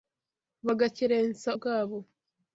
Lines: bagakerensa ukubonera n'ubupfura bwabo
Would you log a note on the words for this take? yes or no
yes